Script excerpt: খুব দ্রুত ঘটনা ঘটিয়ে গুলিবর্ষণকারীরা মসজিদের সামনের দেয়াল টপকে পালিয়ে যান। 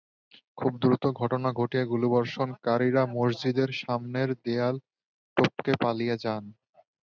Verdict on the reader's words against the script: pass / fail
pass